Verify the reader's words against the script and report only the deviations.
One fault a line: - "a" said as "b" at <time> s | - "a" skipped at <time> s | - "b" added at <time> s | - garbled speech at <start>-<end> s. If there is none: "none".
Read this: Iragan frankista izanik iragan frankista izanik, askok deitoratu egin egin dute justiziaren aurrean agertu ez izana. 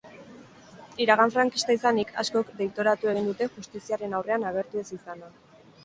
- "iragan frankista izanik" skipped at 2.1 s
- "egin" skipped at 3.3 s